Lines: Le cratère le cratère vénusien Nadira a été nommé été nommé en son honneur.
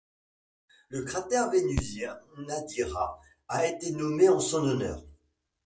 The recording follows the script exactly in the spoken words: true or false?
false